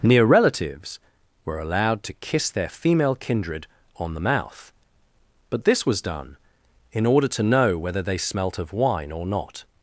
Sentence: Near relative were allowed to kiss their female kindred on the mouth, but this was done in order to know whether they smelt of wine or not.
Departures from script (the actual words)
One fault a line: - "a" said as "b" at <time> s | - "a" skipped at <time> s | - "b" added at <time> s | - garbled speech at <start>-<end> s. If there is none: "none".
- "relative" said as "relatives" at 0.2 s